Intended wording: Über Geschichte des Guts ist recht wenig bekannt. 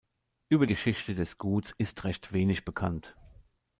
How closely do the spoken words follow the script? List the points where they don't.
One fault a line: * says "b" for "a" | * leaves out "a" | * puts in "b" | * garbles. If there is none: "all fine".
all fine